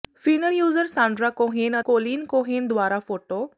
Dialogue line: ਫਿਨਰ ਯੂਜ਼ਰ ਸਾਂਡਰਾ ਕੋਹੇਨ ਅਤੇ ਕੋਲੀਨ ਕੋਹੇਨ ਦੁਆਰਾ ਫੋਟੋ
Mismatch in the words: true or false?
true